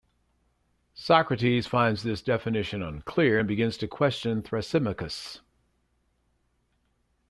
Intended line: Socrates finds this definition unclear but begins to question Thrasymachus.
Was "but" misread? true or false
true